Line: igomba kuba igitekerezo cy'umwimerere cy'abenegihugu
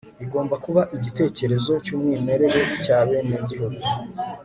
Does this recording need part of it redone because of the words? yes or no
no